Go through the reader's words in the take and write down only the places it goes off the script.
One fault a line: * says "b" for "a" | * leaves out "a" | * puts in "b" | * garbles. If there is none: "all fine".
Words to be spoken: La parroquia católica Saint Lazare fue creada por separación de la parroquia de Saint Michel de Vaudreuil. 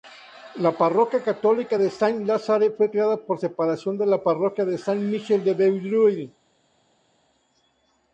* puts in "de"